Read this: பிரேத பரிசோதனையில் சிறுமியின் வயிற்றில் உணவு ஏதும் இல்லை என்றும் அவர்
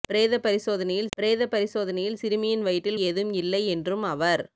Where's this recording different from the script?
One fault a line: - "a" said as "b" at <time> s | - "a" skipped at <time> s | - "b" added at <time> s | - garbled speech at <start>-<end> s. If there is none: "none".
- "பிரேத பரிசோதனையில்" added at 1.2 s
- "உணவு" skipped at 3.0 s